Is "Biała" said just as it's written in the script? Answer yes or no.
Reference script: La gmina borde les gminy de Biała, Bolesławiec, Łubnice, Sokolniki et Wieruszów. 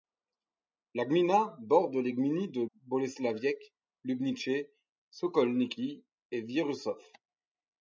no